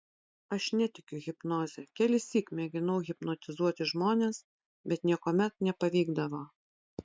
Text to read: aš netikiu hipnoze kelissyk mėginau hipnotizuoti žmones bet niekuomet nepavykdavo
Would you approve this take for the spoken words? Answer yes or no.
yes